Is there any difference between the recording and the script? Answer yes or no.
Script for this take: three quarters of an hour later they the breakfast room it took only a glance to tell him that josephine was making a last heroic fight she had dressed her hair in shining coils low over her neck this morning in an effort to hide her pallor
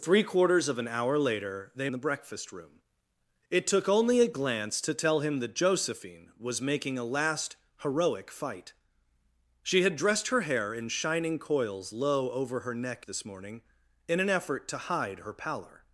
no